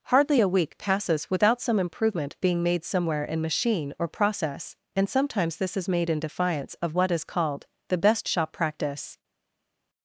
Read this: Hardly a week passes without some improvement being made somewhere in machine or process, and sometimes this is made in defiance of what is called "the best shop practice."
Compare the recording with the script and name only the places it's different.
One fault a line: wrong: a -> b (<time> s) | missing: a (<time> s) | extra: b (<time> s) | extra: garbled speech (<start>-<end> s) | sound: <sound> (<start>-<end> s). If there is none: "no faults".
no faults